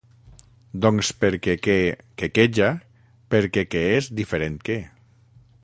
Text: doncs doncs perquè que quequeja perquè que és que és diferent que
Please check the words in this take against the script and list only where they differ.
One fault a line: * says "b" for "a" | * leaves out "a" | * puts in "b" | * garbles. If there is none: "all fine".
* leaves out "doncs"
* leaves out "que és"